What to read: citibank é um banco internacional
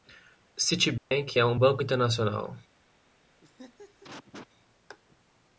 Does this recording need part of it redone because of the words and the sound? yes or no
yes